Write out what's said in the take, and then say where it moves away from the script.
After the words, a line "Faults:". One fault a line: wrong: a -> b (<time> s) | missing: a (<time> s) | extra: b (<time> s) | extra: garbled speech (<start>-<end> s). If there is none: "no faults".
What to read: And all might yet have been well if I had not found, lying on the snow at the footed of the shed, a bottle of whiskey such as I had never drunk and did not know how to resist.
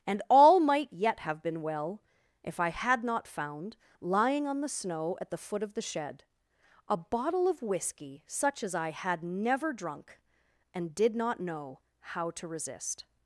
And all might yet have been well if I had not found, lying on the snow at the foot of the shed, a bottle of whiskey such as I had never drunk and did not know how to resist.
Faults:
wrong: footed -> foot (5.4 s)